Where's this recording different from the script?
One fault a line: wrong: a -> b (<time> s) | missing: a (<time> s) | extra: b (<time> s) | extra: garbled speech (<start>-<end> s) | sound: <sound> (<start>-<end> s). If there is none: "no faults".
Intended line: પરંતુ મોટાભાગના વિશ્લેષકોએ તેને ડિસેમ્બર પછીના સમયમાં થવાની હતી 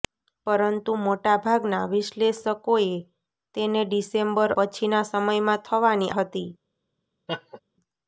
sound: laugh (7.3-7.6 s)